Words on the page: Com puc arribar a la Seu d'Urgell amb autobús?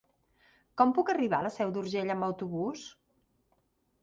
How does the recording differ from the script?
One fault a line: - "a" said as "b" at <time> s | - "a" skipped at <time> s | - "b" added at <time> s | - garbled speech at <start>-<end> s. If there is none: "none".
none